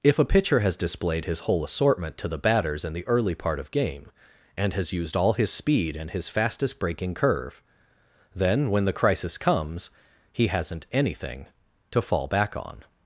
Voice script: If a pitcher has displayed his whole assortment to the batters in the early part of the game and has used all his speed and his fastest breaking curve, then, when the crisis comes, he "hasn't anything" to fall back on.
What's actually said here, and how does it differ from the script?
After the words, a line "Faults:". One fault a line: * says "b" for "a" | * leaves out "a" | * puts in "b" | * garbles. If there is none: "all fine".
If a pitcher has displayed his whole assortment to the batters in the early part of game and has used all his speed and his fastest breaking curve, then, when the crisis comes, he "hasn't anything" to fall back on.
Faults:
* leaves out "the"